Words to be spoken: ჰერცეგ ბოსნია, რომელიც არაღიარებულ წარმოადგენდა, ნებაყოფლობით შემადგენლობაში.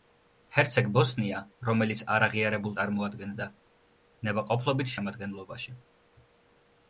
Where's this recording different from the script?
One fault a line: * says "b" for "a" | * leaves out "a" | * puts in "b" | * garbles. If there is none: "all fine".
all fine